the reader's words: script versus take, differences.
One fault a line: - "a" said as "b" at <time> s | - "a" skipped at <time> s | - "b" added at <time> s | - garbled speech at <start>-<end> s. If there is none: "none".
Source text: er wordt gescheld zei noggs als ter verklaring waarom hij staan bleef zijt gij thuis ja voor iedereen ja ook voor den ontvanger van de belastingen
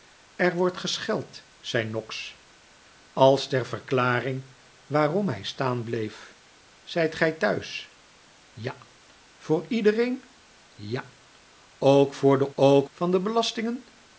- "ontvanger" said as "ook" at 12.6 s